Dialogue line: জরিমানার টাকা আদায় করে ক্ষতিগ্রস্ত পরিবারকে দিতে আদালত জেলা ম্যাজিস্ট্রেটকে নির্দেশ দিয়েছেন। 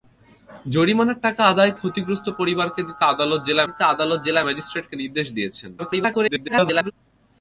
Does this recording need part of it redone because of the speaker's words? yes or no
yes